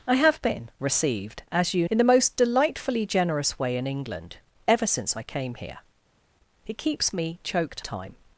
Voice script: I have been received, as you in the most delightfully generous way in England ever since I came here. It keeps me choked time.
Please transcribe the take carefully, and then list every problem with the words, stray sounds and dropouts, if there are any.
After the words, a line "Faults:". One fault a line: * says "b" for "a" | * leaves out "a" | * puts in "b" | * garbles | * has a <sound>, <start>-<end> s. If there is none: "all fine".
I have been received, as you in the most delightfully generous way in England ever since I came here. It keeps me choked time.
Faults:
all fine